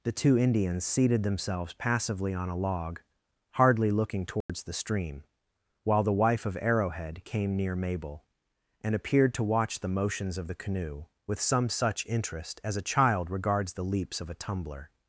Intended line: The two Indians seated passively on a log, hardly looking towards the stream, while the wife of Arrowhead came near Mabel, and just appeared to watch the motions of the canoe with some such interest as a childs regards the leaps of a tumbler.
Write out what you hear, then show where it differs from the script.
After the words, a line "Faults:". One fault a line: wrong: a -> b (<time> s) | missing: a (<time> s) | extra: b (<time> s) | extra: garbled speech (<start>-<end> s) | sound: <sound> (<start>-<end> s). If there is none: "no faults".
The two Indians seated themselves passively on a log, hardly looking towards the stream, while the wife of Arrowhead came near Mabel, and appeared to watch the motions of the canoe with some such interest as a child regards the leaps of a tumbler.
Faults:
extra: themselves (1.2 s)
sound: dropout (4.4-4.5 s)
missing: just (8.9 s)
wrong: childs -> child (12.8 s)